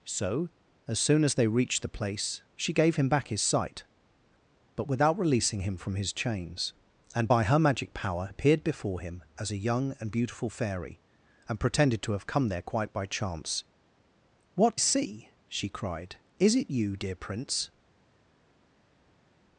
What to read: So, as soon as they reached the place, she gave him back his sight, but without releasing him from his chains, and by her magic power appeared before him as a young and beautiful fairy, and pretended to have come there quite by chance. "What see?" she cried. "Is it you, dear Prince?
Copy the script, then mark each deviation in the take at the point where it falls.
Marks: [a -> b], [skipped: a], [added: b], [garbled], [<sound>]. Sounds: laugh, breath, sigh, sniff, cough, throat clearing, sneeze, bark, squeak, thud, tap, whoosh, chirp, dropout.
So, as soon as they reached the place, she gave him back his sight, but without releasing him from his chains, and by her magic power appeared before him as a young and beautiful fairy, and pretended to have come there quite by chance. "What see?" she cried. "Is it you, dear Prince?